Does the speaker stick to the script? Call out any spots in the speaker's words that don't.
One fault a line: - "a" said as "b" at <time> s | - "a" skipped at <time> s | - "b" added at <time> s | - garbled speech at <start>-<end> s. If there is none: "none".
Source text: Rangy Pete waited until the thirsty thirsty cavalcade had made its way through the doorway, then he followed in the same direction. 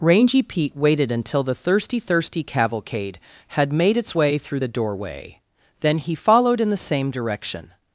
none